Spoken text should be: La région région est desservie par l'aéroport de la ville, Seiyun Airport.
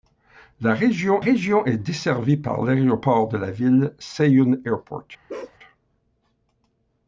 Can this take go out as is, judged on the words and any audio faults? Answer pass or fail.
fail